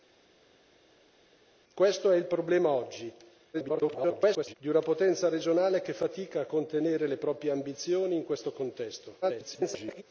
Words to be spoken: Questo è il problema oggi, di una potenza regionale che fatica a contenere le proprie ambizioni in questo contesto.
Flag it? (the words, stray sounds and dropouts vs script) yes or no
yes